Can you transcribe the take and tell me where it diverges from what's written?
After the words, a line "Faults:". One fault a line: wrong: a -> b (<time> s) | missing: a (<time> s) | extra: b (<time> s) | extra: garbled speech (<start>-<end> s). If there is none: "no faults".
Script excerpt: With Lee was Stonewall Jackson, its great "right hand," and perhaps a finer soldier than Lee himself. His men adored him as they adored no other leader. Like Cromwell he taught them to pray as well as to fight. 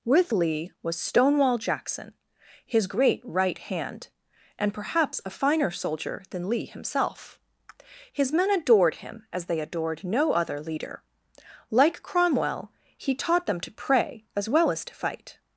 With Lee was Stonewall Jackson, his great "right hand," and perhaps a finer soldier than Lee himself. His men adored him as they adored no other leader. Like Cromwell he taught them to pray as well as to fight.
Faults:
wrong: its -> his (2.6 s)